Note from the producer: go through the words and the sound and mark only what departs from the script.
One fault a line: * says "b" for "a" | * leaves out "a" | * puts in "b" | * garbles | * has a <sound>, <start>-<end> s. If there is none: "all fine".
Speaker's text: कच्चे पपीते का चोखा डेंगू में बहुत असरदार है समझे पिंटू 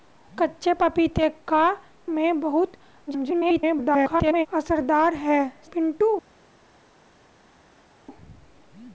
* leaves out "चोखा डेंगू"
* garbles
* leaves out "समझे"